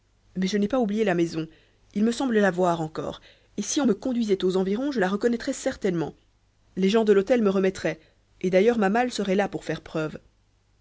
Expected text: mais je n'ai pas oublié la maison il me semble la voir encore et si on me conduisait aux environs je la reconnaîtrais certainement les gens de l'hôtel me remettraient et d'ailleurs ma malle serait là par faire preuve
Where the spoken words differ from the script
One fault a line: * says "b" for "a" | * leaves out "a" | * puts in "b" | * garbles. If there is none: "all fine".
* says "pour" for "par"